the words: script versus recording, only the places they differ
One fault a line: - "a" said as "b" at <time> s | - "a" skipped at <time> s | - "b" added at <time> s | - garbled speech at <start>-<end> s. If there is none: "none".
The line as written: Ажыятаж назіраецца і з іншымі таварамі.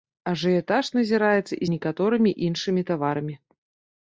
- "некаторымі" added at 1.8 s